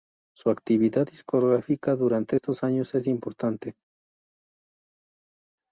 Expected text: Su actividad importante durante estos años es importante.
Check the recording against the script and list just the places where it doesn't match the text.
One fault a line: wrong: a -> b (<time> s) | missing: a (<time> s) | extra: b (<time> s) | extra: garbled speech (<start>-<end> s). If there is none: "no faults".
wrong: importante -> discográfica (1.0 s)